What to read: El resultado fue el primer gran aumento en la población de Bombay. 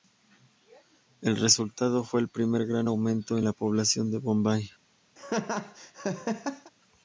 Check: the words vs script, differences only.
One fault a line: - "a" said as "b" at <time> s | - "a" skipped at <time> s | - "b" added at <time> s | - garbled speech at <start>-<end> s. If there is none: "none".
none